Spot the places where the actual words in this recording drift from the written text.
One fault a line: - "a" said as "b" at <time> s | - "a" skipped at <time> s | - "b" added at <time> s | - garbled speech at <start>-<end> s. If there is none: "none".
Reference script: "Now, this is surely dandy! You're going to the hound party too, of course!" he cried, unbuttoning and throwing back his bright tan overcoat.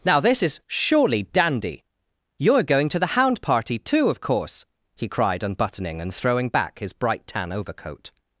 none